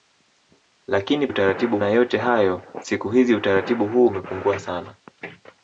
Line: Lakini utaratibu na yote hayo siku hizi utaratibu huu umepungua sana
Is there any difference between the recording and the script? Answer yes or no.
no